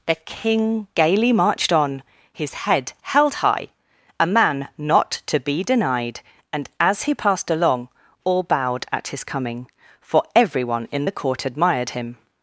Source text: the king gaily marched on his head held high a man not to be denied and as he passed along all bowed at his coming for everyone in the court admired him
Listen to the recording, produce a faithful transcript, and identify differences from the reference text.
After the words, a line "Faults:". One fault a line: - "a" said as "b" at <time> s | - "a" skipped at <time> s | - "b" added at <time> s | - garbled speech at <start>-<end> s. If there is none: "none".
the king gaily marched on his head held high a man not to be denied and as he passed along all bowed at his coming for everyone in the court admired him
Faults:
none